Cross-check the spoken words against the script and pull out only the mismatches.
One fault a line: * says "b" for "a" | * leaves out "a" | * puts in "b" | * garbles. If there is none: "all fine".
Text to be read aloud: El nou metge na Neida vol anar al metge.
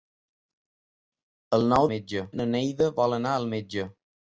all fine